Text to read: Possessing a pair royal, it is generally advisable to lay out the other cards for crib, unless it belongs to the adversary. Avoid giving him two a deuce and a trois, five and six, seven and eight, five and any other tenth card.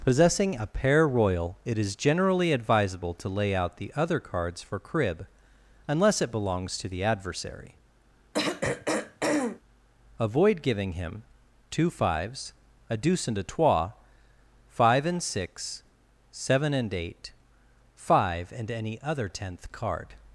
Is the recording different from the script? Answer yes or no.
yes